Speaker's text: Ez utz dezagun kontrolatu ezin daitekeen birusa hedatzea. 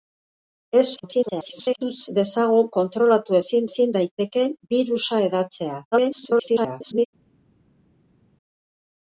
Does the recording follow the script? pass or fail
fail